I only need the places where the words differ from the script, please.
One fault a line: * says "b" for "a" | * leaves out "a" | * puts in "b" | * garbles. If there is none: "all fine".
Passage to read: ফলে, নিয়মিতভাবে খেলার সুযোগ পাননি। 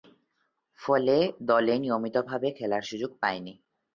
* puts in "দলে"